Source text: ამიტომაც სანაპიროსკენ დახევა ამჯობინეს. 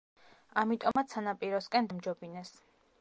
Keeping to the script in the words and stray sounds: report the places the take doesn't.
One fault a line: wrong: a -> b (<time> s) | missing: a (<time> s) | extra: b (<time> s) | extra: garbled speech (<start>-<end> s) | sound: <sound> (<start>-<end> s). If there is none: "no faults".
sound: dropout (0.9-1.0 s)
missing: დახევა (1.9 s)